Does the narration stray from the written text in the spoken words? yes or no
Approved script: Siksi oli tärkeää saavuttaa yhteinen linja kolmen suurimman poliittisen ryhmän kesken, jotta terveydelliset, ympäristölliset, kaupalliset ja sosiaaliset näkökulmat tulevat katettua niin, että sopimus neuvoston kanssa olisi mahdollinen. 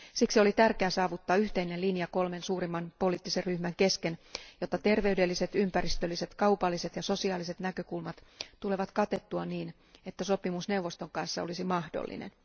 no